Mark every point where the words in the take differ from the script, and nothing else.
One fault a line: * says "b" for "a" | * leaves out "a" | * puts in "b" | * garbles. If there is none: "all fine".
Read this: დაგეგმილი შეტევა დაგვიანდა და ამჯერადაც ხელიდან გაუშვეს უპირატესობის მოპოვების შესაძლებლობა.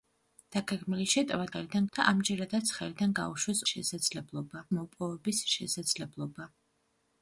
* says "ხელიდან" for "დაგვიანდა"
* says "შესაძლებლობა" for "უპირატესობის"